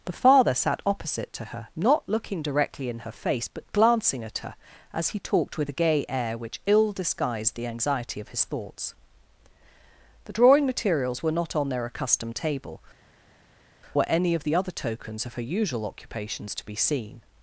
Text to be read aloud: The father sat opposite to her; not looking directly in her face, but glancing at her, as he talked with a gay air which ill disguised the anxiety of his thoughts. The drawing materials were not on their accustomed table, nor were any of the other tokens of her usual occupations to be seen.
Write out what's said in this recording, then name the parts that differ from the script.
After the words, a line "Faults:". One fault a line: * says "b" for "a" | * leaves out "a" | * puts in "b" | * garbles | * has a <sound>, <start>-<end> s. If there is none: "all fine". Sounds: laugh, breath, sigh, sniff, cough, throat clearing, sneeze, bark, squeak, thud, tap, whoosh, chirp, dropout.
The father sat opposite to her; not looking directly in her face, but glancing at her, as he talked with a gay air which ill disguised the anxiety of his thoughts. The drawing materials were not on their accustomed table, were any of the other tokens of her usual occupations to be seen.
Faults:
* leaves out "nor"